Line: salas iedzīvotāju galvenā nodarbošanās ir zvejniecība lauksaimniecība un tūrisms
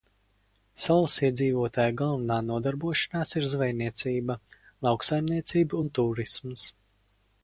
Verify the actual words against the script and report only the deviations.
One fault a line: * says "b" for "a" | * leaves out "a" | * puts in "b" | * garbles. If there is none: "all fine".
all fine